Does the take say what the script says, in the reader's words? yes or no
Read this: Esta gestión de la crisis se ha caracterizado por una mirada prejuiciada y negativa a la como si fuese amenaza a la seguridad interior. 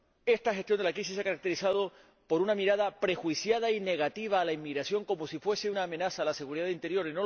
no